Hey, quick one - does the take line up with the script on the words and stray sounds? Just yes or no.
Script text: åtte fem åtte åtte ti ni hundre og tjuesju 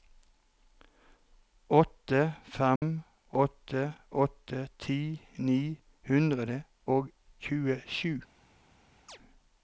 no